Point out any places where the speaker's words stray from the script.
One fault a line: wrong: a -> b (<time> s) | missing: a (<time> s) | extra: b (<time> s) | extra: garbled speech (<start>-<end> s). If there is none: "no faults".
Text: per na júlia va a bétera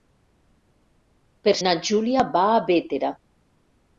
no faults